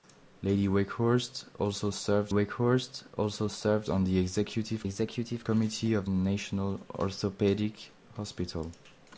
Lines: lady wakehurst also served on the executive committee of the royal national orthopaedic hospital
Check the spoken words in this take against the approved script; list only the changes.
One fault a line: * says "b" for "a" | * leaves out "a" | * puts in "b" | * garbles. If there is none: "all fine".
* puts in "wakehurst also served"
* puts in "executive"
* leaves out "the royal"